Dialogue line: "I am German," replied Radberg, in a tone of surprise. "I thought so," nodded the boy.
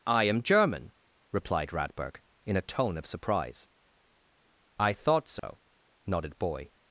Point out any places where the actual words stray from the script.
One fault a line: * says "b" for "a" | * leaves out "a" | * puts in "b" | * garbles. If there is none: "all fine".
* leaves out "the"